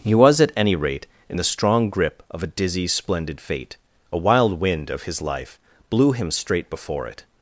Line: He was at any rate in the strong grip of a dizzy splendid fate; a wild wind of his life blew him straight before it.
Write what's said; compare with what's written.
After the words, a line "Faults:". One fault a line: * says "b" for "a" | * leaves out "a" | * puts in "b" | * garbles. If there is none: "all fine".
He was at any rate in the strong grip of a dizzy splendid fate; a wild wind of his life blew him straight before it.
Faults:
all fine